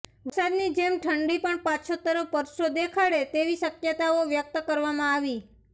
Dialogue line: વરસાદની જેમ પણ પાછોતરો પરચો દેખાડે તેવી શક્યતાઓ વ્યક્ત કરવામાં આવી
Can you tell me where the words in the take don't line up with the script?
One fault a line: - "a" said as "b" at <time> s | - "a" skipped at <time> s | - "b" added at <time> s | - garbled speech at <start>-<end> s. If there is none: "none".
- "ઠંડી" added at 1.0 s